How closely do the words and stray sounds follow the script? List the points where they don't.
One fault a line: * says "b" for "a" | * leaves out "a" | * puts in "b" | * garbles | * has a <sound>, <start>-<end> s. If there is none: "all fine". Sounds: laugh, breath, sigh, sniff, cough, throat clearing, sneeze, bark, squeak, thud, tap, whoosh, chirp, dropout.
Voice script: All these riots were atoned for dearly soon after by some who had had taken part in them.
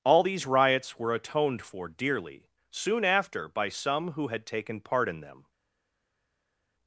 * leaves out "had"